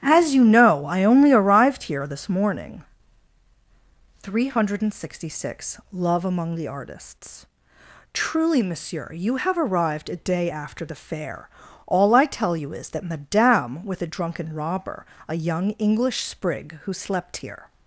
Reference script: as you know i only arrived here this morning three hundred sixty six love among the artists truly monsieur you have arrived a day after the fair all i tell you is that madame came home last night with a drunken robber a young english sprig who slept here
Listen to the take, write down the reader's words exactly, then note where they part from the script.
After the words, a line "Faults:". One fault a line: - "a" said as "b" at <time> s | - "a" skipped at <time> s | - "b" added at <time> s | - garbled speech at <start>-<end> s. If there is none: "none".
as you know i only arrived here this morning three hundred sixty six love among the artists truly monsieur you have arrived a day after the fair all i tell you is that madame with a drunken robber a young english sprig who slept here
Faults:
- "came home last night" skipped at 13.8 s